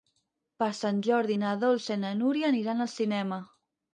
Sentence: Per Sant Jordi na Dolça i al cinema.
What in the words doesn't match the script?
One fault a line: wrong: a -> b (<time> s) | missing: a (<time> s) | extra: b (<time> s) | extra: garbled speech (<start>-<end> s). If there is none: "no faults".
extra: na Núria aniran (2.0 s)